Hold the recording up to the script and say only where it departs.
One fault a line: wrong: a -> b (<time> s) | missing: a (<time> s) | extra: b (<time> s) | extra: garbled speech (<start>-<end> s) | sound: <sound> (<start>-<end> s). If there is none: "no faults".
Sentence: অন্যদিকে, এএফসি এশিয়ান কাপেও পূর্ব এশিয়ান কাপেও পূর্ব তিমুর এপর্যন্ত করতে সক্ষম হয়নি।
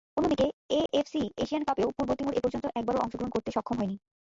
sound: dropout (0.9-0.9 s)
wrong: এশিয়ান কাপেও পূর্ব তিমুর এপর্যন্ত -> তিমুর এপর্যন্ত একবারও অংশগ্রহণ (2.2 s)